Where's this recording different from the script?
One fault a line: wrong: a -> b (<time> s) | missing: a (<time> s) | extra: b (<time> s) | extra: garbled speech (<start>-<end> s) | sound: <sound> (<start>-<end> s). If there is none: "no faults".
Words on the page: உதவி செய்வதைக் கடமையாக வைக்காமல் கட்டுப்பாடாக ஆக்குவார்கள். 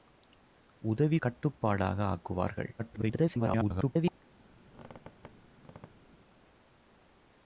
missing: செய்வதைக் கடமையாக வைக்காமல் (1.2 s)
extra: garbled speech (2.8-4.2 s)
sound: squeak (4.7-6.2 s)